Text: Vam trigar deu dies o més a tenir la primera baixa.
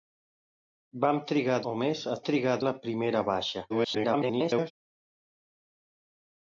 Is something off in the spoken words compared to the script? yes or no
yes